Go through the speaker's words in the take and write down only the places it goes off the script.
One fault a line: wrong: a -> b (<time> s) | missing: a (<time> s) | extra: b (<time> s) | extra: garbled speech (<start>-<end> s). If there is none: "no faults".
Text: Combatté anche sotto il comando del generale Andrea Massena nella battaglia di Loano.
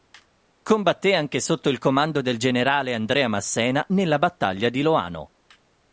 no faults